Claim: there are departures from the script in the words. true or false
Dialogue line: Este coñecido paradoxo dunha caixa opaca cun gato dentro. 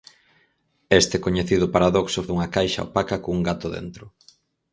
false